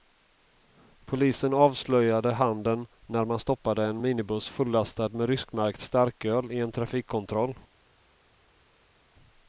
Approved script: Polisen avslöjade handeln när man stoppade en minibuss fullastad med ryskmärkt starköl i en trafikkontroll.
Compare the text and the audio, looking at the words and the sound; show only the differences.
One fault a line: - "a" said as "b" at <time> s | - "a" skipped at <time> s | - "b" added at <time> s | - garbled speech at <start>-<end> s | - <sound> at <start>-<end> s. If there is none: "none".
none